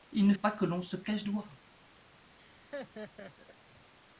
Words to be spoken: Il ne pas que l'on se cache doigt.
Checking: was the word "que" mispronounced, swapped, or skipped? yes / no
no